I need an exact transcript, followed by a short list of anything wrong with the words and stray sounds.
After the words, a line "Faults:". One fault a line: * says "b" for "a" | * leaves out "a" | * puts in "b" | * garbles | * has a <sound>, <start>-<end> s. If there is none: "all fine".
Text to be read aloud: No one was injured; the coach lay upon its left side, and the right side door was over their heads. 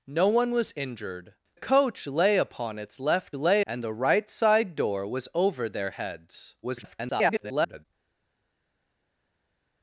No one was injured; coach lay upon its left lay, and the right side door was over their heads. [garbled]
Faults:
* leaves out "the"
* says "lay" for "side"
* garbles